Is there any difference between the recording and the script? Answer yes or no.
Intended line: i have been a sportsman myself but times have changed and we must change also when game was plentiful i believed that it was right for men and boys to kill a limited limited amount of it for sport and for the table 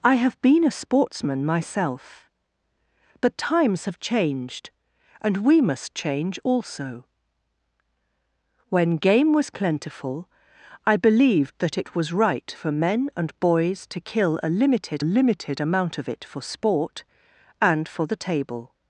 no